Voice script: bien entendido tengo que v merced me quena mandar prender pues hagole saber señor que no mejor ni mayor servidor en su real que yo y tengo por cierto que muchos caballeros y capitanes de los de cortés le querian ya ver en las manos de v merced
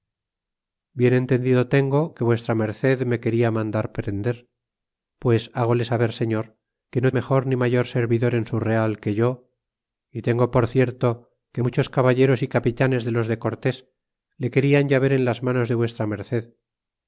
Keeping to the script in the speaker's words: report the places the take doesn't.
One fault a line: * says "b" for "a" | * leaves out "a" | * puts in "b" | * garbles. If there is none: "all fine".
all fine